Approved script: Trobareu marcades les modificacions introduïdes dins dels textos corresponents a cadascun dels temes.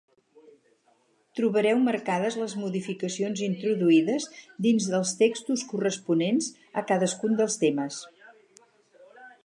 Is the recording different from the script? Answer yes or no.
no